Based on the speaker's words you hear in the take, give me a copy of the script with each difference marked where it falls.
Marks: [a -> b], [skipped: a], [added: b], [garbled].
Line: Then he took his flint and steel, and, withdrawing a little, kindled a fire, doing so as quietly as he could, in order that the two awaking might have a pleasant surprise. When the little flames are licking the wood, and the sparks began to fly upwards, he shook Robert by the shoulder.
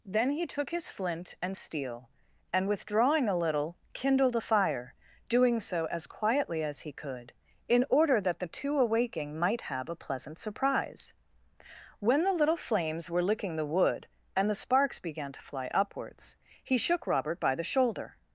Then he took his flint and steel, and, withdrawing a little, kindled a fire, doing so as quietly as he could, in order that the two awaking might have a pleasant surprise. When the little flames [are -> were] licking the wood, and the sparks began to fly upwards, he shook Robert by the shoulder.